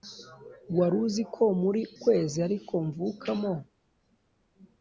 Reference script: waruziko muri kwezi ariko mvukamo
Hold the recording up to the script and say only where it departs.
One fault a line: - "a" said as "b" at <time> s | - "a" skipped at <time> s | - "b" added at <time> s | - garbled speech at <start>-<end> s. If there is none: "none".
none